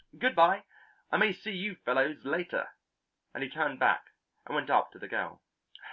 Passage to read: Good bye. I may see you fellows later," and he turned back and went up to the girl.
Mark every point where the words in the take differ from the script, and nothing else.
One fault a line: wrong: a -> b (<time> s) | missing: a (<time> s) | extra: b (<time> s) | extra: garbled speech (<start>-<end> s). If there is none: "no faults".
no faults